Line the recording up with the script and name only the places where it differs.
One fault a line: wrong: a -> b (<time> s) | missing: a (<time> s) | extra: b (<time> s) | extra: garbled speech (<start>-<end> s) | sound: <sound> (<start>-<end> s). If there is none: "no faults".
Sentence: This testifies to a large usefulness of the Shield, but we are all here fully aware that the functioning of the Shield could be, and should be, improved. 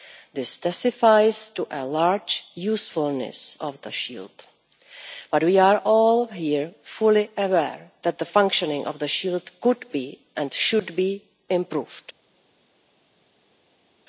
no faults